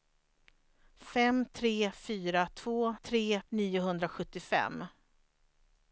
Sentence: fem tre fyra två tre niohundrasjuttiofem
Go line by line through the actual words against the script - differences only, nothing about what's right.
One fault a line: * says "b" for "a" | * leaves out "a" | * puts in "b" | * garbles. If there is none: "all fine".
all fine